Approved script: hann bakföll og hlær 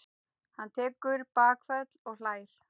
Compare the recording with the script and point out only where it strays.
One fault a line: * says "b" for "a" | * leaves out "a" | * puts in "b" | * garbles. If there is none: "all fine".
* puts in "tekur"